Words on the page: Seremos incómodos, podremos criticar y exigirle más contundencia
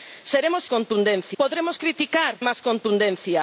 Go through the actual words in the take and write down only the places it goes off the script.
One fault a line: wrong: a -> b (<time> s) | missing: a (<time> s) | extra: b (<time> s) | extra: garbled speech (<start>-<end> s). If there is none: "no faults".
wrong: incómodos -> contundencia (0.7 s)
missing: y exigirle (2.4 s)